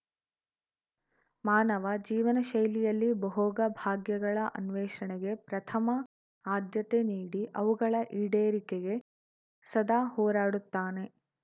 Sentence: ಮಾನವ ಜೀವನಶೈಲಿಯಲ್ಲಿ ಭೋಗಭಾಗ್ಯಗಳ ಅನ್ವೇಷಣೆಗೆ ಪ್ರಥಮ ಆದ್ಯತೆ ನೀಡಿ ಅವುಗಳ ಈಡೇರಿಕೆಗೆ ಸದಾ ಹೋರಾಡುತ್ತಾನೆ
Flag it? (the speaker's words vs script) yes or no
no